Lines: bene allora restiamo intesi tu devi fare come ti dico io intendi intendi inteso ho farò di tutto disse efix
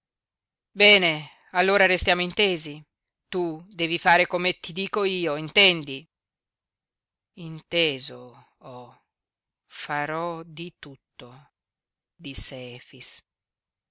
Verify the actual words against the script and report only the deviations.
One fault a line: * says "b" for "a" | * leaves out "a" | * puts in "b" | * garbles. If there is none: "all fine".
* leaves out "intendi"